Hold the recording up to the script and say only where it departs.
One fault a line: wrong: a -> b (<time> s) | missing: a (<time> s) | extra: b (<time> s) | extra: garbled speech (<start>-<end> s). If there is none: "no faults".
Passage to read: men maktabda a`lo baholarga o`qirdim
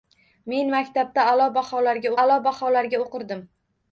extra: a`lo baholarga (2.2 s)